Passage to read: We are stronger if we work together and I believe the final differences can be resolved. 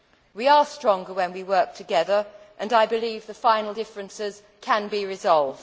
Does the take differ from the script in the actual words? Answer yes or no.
yes